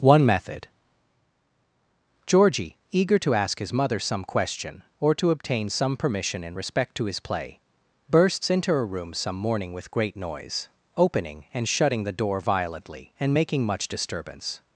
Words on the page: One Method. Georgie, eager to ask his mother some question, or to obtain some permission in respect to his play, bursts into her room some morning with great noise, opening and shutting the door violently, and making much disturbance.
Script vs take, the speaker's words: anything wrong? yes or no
no